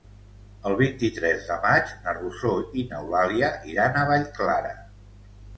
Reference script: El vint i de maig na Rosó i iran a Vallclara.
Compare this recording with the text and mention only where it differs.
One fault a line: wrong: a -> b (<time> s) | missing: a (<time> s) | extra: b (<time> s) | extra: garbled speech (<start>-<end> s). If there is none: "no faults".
extra: tres (1.2 s)
extra: n'Eulàlia (3.0 s)